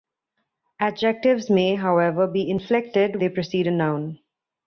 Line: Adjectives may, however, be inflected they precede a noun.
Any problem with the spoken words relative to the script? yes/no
no